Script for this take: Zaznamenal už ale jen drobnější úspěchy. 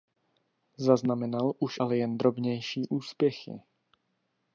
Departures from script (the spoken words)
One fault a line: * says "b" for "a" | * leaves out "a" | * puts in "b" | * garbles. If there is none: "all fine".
all fine